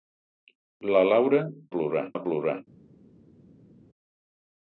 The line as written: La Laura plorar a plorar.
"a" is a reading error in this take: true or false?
false